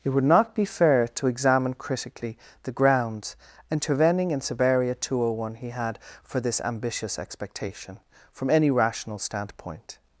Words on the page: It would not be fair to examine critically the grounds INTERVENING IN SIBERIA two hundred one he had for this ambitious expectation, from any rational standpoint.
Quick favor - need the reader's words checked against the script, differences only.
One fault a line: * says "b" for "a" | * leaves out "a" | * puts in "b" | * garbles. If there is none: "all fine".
all fine